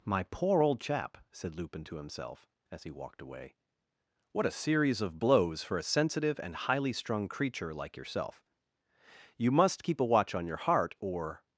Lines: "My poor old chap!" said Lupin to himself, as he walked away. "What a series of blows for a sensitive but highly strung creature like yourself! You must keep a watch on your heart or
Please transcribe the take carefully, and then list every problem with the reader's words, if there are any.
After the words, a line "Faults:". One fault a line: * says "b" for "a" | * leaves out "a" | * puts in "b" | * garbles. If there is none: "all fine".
"My poor old chap!" said Lupin to himself, as he walked away. "What a series of blows for a sensitive and highly strung creature like yourself! You must keep a watch on your heart or
Faults:
* says "and" for "but"